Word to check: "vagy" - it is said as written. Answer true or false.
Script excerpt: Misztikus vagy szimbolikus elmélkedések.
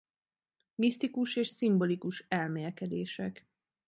false